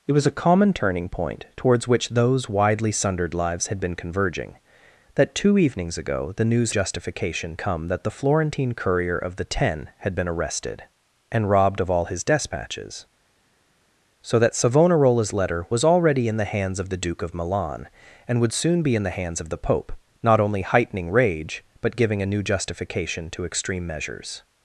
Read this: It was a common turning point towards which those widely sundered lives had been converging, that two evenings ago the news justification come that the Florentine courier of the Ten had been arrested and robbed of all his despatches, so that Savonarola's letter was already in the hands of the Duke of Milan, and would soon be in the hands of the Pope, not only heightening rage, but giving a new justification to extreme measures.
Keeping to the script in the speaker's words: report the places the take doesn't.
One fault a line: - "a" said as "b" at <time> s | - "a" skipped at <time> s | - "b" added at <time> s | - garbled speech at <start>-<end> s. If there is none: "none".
none